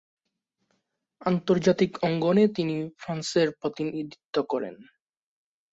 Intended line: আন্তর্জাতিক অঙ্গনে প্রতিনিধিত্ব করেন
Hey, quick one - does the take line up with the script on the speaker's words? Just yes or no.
no